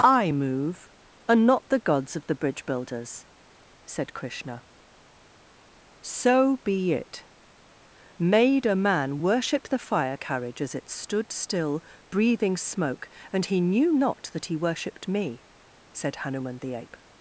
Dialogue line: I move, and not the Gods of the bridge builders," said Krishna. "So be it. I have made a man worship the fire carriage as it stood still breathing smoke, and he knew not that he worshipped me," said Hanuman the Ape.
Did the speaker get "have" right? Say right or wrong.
wrong